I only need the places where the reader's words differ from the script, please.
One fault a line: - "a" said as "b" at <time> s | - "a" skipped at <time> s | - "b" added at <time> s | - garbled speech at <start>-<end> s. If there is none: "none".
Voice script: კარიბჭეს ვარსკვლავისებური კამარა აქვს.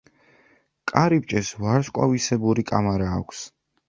none